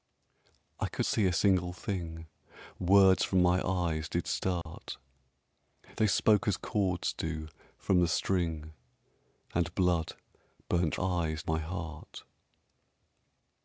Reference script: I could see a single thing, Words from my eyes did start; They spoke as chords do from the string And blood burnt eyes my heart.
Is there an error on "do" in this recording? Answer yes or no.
no